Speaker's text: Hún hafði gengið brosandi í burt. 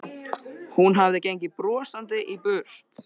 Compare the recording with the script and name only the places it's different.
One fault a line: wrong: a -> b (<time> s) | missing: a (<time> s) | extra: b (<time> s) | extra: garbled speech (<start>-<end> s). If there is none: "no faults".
no faults